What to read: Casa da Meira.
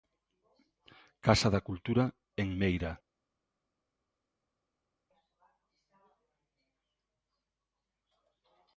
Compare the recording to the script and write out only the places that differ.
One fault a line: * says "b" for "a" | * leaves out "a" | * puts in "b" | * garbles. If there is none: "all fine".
* puts in "Cultura en"